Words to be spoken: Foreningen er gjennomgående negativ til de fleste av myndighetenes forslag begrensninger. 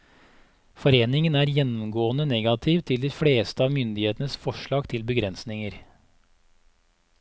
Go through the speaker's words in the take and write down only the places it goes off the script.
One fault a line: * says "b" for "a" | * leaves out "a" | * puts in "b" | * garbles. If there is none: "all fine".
* puts in "til"